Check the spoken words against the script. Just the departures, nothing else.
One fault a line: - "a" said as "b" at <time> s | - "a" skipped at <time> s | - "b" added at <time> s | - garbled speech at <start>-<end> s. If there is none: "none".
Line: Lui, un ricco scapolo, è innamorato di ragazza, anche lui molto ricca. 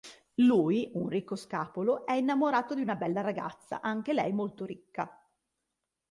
- "una bella" added at 2.8 s
- "lui" said as "lei" at 4.1 s